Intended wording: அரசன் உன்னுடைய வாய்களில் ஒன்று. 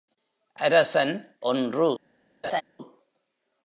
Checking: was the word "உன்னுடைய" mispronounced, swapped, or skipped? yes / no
yes